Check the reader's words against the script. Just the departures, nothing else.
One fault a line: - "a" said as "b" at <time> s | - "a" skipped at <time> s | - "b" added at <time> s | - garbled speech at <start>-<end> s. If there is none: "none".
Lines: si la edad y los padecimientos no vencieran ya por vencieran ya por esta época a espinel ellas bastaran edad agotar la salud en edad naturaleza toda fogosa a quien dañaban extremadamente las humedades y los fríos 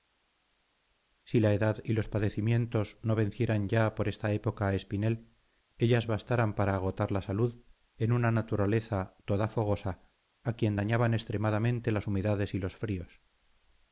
- "vencieran ya por" skipped at 4.1 s
- "edad" said as "para" at 6.5 s
- "edad" said as "una" at 8.1 s